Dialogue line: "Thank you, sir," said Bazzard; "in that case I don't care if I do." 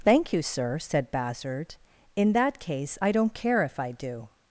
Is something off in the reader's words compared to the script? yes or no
no